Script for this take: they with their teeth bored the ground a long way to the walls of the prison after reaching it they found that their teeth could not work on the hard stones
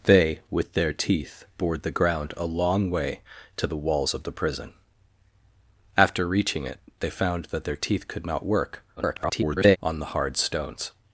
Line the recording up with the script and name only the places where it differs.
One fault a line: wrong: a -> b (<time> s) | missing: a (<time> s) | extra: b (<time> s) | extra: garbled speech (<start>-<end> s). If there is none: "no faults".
extra: garbled speech (9.0-9.8 s)